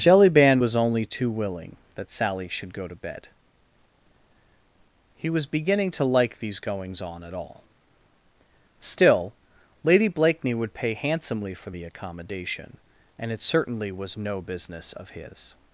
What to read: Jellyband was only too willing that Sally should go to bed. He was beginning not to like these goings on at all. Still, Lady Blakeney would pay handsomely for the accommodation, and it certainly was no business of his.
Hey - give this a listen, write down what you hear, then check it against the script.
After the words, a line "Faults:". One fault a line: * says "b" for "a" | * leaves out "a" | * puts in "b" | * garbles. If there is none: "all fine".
Jellyband was only too willing that Sally should go to bed. He was beginning to like these goings on at all. Still, Lady Blakeney would pay handsomely for the accommodation, and it certainly was no business of his.
Faults:
* leaves out "not"